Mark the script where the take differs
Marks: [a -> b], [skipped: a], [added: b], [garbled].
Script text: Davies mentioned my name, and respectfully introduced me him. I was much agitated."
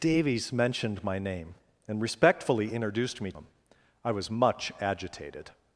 Davies mentioned my name, and respectfully introduced me him. I was much agitated."